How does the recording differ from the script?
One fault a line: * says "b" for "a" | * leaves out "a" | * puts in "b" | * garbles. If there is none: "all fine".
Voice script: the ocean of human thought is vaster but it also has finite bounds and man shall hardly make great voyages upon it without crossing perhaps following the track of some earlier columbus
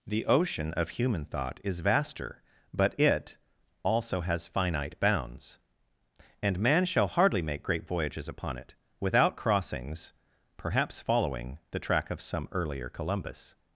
* says "crossings" for "crossing"